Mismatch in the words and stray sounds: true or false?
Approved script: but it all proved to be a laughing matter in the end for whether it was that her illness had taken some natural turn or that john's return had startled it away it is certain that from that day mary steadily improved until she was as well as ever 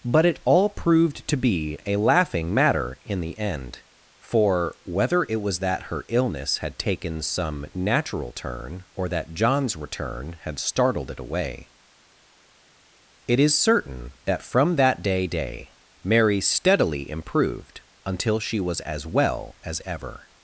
true